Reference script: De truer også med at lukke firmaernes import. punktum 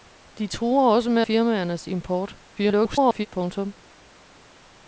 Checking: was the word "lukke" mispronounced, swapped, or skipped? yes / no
yes